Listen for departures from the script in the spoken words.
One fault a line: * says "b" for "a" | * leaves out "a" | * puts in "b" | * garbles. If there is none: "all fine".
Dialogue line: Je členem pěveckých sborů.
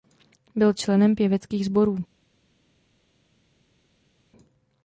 * says "Byl" for "Je"